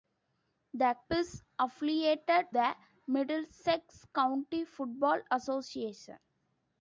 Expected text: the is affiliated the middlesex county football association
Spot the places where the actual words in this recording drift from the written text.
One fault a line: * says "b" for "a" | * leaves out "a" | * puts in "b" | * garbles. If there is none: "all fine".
all fine